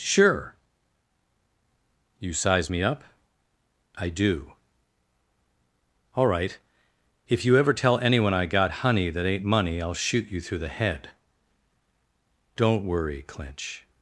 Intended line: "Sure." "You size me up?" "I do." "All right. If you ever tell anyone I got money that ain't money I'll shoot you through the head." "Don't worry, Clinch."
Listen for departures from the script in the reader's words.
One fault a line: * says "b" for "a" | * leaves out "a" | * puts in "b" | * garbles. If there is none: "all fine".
* says "honey" for "money"